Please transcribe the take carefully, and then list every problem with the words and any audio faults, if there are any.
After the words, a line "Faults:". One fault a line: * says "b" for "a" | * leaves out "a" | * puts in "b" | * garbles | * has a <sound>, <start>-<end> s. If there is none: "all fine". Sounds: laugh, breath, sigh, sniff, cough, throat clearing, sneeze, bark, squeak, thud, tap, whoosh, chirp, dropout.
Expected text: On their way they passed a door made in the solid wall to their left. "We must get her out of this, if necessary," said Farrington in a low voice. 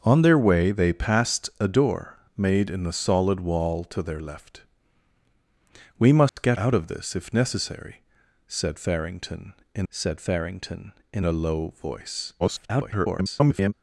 On their way they passed a door made in the solid wall to their left. "We must get out of this, if necessary," said Farrington in said Farrington in a low voice. [garbled]
Faults:
* has a dropout, 6.3-6.4 s
* leaves out "her"
* puts in "said Farrington in"
* garbles